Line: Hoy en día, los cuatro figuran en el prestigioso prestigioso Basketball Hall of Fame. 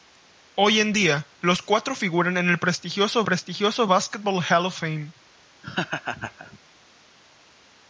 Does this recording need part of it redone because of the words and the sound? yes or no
yes